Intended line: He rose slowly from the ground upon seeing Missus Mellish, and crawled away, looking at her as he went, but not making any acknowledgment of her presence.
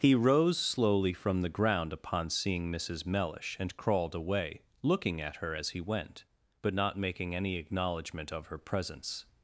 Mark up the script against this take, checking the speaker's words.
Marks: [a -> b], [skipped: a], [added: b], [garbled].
He rose slowly from the ground upon seeing Missus Mellish, and crawled away, looking at her as he went, but not making any acknowledgment of her presence.